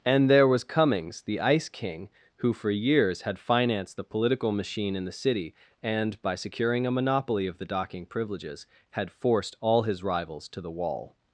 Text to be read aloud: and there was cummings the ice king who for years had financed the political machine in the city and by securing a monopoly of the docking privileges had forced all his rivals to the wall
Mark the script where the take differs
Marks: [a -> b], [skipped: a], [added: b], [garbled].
and there was cummings the ice king who for years had financed the political machine in the city and by securing a monopoly of the docking privileges had forced all his rivals to the wall